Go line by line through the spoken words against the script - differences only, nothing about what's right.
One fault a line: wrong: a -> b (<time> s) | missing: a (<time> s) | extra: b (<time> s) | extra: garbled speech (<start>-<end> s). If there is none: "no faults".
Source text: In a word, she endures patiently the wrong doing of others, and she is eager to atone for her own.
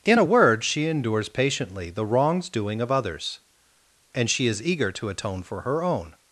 wrong: wrong -> wrongs (2.1 s)